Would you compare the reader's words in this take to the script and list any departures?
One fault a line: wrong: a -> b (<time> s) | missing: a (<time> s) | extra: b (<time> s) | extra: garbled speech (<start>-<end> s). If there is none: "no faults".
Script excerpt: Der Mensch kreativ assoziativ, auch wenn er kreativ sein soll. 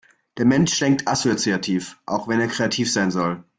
wrong: kreativ -> denkt (0.8 s)